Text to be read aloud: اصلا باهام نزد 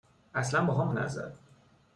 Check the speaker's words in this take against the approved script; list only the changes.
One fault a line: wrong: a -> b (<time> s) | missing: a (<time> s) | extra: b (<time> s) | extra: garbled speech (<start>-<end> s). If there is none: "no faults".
no faults